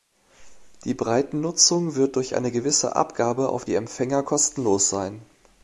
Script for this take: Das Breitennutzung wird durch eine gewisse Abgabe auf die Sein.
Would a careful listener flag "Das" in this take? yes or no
yes